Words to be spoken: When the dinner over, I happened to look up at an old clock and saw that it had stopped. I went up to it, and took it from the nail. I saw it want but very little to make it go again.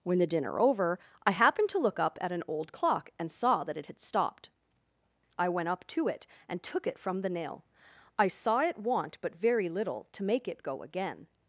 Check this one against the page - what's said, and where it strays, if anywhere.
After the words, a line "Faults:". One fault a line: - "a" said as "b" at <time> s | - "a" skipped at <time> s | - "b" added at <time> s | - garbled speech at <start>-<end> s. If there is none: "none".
When the dinner over, I happened to look up at an old clock and saw that it had stopped. I went up to it, and took it from the nail. I saw it want but very little to make it go again.
Faults:
none